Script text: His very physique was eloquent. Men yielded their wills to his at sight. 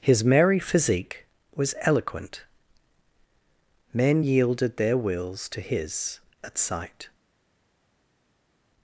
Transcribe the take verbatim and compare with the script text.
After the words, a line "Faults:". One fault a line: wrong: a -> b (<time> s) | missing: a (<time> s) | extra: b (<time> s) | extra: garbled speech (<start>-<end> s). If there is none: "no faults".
His merry physique was eloquent. Men yielded their wills to his at sight.
Faults:
wrong: very -> merry (0.2 s)